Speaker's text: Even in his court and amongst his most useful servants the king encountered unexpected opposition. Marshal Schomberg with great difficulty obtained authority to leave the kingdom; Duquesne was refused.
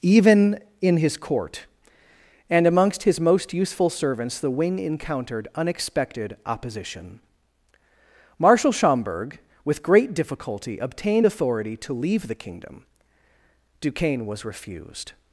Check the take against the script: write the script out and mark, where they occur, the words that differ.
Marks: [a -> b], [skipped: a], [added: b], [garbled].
Even in his court and amongst his most useful servants the [king -> wing] encountered unexpected opposition. Marshal Schomberg with great difficulty obtained authority to leave the kingdom; Duquesne was refused.